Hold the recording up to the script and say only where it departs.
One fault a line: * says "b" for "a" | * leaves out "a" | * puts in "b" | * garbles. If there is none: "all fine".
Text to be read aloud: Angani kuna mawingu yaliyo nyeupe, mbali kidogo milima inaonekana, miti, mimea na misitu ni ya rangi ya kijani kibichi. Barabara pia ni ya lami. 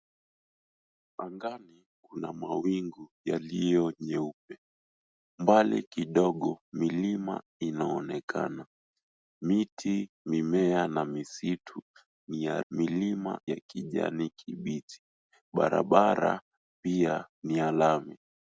* says "milima" for "rangi"